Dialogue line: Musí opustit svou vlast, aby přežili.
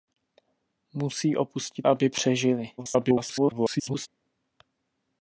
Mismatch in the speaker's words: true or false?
true